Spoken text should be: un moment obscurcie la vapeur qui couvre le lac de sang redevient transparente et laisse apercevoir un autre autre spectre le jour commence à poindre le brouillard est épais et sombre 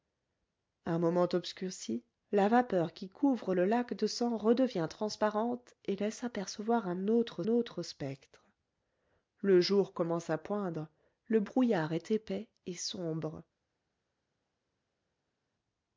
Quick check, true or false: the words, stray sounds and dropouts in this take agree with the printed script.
true